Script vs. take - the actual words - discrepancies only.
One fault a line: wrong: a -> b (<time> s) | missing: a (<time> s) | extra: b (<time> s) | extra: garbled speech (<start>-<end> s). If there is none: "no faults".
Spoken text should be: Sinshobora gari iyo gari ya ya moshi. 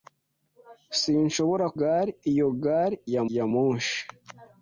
no faults